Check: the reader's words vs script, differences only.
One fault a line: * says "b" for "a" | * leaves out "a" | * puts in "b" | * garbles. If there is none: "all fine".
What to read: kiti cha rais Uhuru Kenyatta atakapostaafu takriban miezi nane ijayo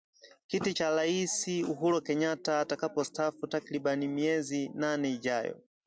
all fine